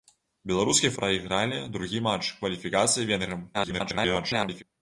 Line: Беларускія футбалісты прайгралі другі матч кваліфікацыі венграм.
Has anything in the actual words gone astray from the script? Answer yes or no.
yes